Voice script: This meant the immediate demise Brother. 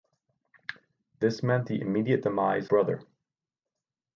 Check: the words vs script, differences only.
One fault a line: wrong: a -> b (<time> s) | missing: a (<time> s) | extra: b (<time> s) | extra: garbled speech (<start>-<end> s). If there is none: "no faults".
no faults